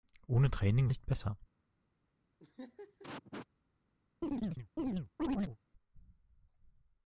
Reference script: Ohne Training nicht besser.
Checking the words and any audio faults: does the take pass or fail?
fail